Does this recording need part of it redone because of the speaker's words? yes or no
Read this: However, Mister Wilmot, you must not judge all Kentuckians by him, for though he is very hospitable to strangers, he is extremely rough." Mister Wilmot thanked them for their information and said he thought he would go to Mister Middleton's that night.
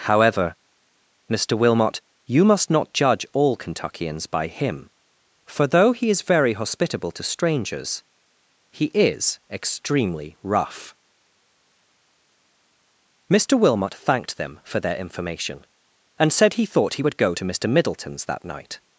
no